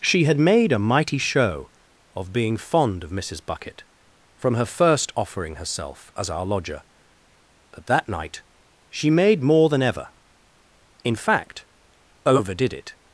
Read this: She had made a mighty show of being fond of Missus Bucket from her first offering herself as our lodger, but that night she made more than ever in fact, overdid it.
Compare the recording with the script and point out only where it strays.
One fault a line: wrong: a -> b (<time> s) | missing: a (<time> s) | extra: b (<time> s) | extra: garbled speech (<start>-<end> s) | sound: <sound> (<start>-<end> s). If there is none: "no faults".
no faults